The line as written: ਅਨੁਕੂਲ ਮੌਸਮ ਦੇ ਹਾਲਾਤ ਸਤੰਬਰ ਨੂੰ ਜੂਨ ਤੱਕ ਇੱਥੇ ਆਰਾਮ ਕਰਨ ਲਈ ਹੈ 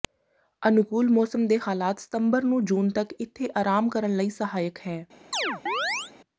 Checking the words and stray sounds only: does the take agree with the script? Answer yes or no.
no